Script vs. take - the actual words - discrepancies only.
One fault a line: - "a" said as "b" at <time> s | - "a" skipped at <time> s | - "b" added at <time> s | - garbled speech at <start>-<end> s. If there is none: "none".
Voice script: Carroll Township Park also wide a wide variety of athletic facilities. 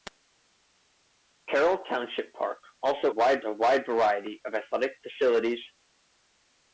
none